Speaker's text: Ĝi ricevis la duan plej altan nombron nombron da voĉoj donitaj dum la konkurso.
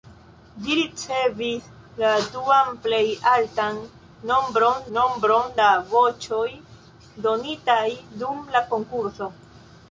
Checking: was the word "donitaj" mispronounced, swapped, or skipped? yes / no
no